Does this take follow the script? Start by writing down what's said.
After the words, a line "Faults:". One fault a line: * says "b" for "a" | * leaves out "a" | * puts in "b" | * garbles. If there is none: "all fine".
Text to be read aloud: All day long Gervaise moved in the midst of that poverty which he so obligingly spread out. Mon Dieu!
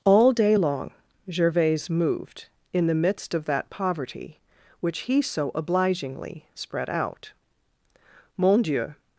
All day long Gervaise moved in the midst of that poverty which he so obligingly spread out. Mon Dieu!
Faults:
all fine